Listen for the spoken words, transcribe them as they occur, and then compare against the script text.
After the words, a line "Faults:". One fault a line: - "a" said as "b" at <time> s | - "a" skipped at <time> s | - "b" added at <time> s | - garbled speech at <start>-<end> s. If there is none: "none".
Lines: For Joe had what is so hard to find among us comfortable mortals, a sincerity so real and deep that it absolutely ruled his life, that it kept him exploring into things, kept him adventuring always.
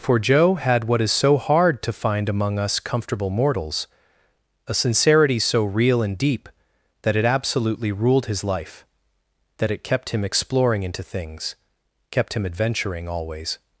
For Joe had what is so hard to find among us comfortable mortals, a sincerity so real and deep that it absolutely ruled his life, that it kept him exploring into things, kept him adventuring always.
Faults:
none